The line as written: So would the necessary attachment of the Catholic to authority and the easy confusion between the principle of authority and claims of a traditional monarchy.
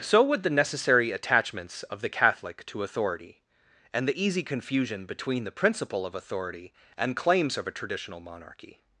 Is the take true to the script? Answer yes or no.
no